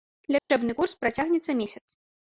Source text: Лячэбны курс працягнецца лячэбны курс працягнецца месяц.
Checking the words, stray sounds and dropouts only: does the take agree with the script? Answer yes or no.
no